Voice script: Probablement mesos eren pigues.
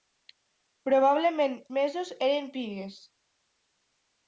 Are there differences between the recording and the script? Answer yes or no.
no